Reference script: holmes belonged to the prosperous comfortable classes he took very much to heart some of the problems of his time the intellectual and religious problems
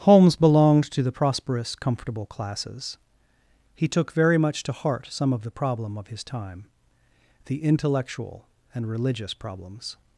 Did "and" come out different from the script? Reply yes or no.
no